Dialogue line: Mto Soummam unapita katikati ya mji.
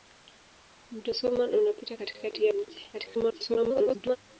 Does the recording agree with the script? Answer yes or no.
no